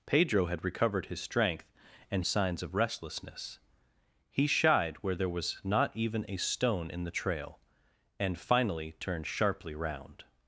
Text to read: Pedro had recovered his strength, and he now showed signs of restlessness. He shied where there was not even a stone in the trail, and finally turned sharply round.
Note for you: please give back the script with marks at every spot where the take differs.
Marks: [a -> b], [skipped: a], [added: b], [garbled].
Pedro had recovered his strength, and [skipped: he now showed] signs of restlessness. He shied where there was not even a stone in the trail, and finally turned sharply round.